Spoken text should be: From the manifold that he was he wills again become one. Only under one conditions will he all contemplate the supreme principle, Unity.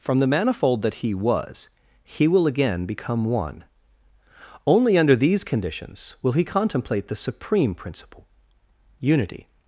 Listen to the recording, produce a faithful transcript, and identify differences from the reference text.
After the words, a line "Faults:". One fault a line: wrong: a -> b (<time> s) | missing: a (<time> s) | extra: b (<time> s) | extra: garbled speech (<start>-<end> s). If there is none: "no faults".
From the manifold that he was he will again become one. Only under these conditions will he contemplate the supreme principle, Unity.
Faults:
wrong: wills -> will (2.3 s)
wrong: one -> these (5.2 s)
missing: all (6.4 s)